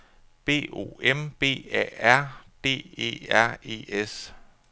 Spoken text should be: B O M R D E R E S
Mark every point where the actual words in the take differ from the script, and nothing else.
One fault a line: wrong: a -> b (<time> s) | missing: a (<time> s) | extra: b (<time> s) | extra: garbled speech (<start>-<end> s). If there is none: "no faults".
extra: B A (1.4 s)